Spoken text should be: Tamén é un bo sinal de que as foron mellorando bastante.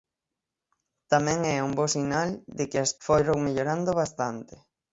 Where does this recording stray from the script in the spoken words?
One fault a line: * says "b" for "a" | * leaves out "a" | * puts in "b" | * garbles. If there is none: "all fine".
all fine